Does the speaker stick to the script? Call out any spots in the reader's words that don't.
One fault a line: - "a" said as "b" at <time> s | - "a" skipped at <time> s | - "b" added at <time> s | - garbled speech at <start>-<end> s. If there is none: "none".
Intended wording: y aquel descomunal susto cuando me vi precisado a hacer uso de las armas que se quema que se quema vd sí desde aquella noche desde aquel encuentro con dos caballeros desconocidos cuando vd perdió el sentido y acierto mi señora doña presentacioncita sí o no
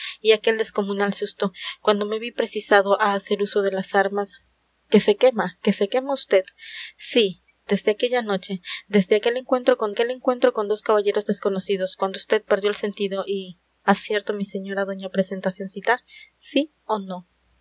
- "aquel encuentro con" added at 9.9 s